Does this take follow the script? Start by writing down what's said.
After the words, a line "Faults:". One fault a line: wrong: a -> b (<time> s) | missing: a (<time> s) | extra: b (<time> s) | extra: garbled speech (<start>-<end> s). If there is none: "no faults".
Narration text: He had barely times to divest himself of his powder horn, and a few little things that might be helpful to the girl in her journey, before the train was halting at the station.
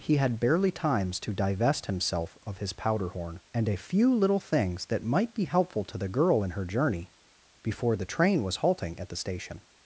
He had barely times to divest himself of his powder horn, and a few little things that might be helpful to the girl in her journey, before the train was halting at the station.
Faults:
no faults